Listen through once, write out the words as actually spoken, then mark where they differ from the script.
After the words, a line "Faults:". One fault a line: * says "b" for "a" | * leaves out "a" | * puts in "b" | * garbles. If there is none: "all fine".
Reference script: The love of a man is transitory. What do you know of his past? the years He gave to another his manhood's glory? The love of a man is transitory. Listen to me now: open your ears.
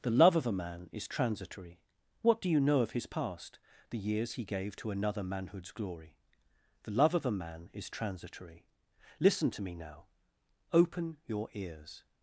The love of a man is transitory. What do you know of his past? the years He gave to another manhood's glory? The love of a man is transitory. Listen to me now: open your ears.
Faults:
* leaves out "his"